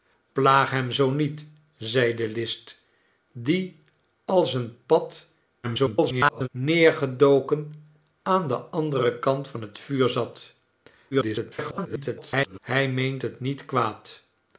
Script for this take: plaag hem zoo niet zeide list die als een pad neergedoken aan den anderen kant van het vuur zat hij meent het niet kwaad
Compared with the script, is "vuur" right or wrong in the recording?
right